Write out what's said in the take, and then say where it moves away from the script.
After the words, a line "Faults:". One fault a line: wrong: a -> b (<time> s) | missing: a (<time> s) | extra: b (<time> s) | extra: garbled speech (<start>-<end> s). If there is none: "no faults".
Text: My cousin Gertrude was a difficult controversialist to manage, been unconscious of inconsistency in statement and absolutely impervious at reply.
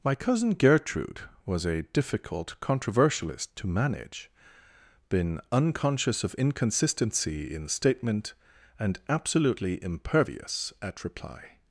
My cousin Gertrude was a difficult controversialist to manage, been unconscious of inconsistency in statement and absolutely impervious at reply.
Faults:
no faults